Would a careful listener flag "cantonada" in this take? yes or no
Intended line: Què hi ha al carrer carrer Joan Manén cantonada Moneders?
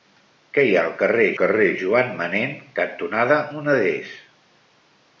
no